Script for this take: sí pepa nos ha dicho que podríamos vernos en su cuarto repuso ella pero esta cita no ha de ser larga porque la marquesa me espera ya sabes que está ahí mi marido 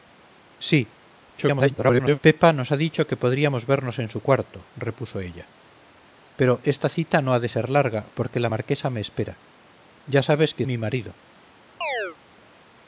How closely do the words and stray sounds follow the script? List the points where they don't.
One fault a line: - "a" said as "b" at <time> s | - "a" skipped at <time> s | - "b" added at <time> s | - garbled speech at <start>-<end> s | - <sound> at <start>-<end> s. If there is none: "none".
- garbled speech at 1.4-2.2 s
- "está ahí" skipped at 10.6 s
- chirp at 11.8-12.2 s